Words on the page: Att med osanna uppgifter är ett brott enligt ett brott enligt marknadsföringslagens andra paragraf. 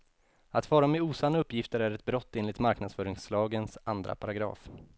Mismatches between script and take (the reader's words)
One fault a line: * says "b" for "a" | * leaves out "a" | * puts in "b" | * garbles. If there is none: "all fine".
* puts in "fara"
* leaves out "ett brott enligt"